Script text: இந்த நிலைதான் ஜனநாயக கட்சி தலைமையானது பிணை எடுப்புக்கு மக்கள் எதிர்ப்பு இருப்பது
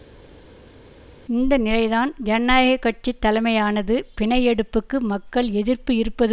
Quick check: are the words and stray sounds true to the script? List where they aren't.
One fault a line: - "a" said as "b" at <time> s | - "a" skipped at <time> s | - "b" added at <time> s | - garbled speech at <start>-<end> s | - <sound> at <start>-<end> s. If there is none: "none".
none